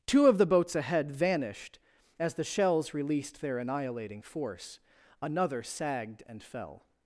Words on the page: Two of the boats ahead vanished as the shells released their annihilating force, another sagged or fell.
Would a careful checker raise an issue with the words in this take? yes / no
yes